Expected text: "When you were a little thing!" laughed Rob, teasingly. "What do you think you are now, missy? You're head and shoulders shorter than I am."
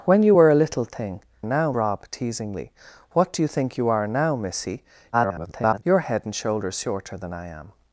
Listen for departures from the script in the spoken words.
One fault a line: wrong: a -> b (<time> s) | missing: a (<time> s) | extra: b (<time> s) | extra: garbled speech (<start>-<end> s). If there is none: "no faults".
wrong: laughed -> now (1.4 s)
extra: garbled speech (5.1-5.8 s)